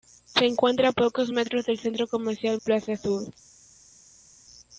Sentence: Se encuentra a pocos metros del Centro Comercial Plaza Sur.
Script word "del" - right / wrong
right